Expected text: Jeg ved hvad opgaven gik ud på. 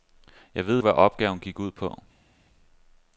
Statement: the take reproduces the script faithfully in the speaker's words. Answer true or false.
true